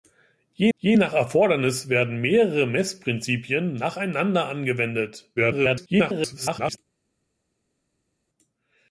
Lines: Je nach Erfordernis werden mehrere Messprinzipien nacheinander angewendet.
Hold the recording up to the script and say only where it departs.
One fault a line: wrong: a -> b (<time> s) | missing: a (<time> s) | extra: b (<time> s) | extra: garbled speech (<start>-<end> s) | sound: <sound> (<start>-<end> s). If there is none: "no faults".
extra: je (0.8 s)
extra: garbled speech (5.4-6.8 s)